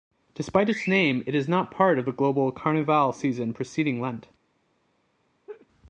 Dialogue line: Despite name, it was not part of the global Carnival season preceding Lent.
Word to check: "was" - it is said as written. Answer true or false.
false